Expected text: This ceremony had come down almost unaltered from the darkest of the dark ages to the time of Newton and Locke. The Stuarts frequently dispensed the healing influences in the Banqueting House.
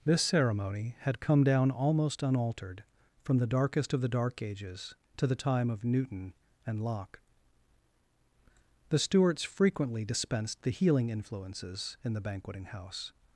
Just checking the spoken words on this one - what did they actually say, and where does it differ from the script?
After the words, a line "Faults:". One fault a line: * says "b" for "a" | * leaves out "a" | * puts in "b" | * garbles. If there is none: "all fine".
This ceremony had come down almost unaltered from the darkest of the dark ages to the time of Newton and Locke. The Stuarts frequently dispensed the healing influences in the Banqueting House.
Faults:
all fine